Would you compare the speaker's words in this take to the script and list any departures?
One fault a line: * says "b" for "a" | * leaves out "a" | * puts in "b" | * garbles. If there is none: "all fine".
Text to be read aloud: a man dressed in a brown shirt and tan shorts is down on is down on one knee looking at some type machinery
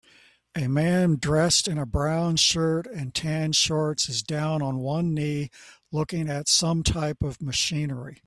* leaves out "is down on"
* puts in "of"